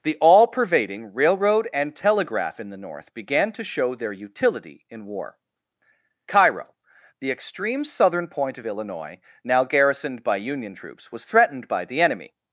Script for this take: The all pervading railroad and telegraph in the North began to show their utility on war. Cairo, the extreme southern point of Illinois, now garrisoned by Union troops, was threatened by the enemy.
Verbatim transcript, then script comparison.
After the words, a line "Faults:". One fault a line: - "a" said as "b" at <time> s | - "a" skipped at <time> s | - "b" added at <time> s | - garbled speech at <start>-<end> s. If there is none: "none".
The all pervading railroad and telegraph in the North began to show their utility in war. Cairo, the extreme southern point of Illinois, now garrisoned by Union troops, was threatened by the enemy.
Faults:
- "on" said as "in" at 4.9 s